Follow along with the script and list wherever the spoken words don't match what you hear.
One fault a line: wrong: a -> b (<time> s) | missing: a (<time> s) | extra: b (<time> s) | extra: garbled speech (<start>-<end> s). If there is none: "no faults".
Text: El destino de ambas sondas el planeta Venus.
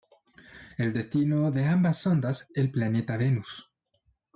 no faults